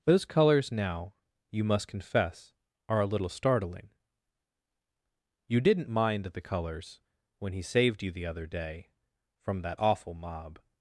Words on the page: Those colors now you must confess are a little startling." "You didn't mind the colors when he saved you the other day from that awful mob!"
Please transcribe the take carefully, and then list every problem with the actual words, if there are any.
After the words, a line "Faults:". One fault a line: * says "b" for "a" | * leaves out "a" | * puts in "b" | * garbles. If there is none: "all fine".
Those colors now you must confess are a little startling." "You didn't mind the colors when he saved you the other day from that awful mob!"
Faults:
all fine